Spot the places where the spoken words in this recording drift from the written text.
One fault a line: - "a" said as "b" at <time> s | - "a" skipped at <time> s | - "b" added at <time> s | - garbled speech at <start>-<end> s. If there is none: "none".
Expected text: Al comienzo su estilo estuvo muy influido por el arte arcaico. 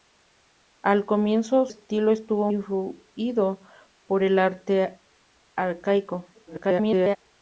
- "su" skipped at 1.7 s
- "muy" skipped at 2.5 s
- garbled speech at 6.3-7.2 s